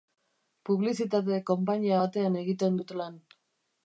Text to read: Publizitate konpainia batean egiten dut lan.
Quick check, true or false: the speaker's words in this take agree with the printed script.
true